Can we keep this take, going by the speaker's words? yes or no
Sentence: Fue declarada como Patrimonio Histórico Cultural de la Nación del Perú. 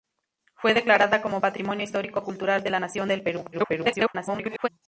no